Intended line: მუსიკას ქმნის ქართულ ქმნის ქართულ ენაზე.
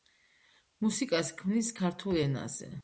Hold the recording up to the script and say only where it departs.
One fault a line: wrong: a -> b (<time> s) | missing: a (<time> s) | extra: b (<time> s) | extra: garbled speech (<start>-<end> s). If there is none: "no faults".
missing: ქმნის ქართულ (2.2 s)